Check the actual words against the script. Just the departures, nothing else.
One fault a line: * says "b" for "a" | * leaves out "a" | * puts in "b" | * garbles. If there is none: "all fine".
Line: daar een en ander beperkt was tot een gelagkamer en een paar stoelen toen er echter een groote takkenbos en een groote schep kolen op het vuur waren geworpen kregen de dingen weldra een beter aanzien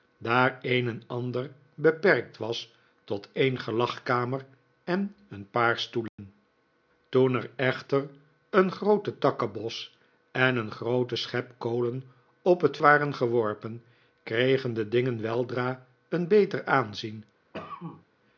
* leaves out "vuur"